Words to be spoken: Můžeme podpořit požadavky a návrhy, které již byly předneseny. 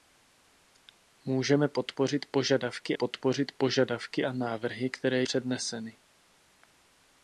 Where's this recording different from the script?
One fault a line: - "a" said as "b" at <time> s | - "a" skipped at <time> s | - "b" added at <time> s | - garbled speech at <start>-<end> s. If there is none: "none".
- "podpořit požadavky" added at 2.9 s
- "již byly" skipped at 5.2 s